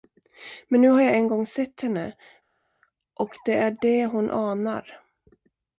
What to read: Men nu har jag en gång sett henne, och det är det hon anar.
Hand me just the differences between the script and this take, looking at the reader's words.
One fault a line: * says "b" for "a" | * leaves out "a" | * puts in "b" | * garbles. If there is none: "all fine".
all fine